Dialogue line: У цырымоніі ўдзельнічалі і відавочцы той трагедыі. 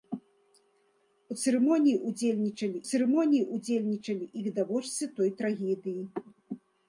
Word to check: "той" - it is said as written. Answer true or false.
true